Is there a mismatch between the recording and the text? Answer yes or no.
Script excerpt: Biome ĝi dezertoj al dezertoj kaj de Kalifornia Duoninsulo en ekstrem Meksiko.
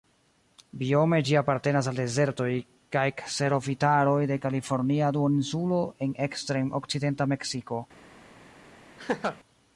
yes